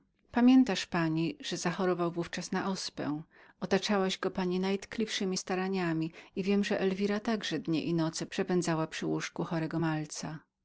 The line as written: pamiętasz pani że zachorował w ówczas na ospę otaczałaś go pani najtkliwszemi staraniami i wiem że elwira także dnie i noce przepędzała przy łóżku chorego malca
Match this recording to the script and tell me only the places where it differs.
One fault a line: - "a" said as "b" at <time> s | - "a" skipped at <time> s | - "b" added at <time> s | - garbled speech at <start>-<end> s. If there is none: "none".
none